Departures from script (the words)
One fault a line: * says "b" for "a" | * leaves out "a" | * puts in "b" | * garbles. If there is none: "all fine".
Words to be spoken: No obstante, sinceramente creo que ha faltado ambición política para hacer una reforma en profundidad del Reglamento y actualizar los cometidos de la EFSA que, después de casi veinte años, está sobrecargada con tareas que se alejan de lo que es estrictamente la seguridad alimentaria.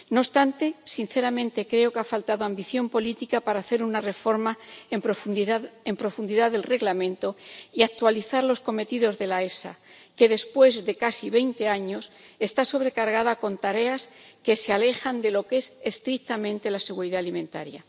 all fine